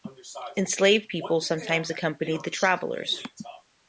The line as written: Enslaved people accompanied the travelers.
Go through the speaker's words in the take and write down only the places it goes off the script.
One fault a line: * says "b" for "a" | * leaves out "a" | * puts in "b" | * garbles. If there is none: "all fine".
* puts in "sometimes"